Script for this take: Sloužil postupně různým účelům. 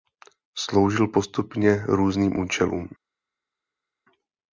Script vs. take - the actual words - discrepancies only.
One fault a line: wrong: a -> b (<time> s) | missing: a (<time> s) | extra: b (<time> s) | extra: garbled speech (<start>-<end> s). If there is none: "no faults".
no faults